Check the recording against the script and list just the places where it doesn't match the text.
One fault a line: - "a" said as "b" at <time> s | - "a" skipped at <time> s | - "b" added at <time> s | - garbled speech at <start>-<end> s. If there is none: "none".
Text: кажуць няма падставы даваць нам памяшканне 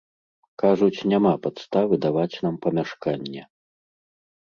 none